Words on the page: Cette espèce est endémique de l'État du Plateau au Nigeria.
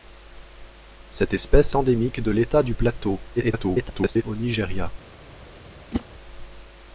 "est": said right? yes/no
no